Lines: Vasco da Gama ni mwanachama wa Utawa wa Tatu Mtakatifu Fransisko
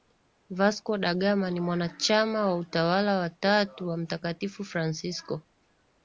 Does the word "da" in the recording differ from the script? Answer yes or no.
no